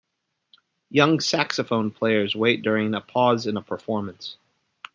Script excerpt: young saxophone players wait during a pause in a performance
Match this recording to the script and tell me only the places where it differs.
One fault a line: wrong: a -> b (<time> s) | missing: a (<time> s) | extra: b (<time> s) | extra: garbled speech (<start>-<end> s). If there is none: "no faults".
no faults